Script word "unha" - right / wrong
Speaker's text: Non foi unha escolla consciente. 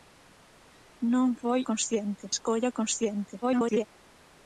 wrong